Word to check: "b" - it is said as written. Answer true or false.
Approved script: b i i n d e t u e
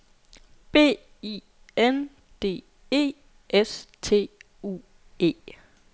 true